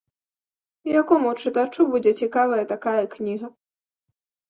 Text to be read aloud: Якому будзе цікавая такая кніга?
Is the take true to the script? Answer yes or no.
no